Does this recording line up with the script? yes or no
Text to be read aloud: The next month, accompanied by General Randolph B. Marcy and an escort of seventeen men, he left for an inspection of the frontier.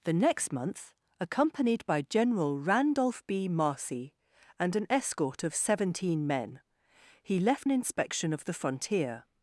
no